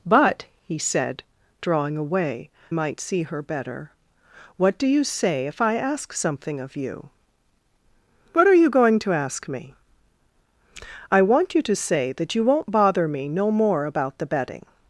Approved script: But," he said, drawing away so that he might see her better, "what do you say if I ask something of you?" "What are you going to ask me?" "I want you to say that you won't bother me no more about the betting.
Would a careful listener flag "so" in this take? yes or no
yes